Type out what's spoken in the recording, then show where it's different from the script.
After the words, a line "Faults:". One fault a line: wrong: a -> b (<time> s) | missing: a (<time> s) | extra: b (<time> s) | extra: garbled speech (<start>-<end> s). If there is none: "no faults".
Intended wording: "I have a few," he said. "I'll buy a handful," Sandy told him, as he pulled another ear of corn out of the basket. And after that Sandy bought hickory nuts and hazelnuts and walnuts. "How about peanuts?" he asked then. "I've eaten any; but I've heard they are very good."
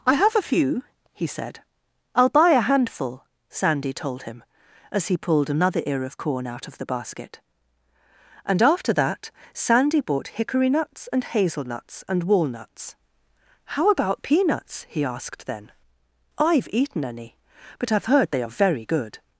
"I have a few," he said. "I'll buy a handful," Sandy told him, as he pulled another ear of corn out of the basket. And after that Sandy bought hickory nuts and hazelnuts and walnuts. "How about peanuts?" he asked then. "I've eaten any; but I've heard they are very good."
Faults:
no faults